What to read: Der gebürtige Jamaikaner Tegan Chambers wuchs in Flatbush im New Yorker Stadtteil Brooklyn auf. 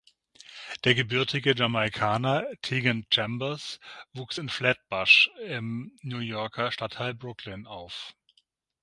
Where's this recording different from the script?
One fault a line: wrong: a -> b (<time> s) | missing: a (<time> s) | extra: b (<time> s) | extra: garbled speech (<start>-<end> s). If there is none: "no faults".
no faults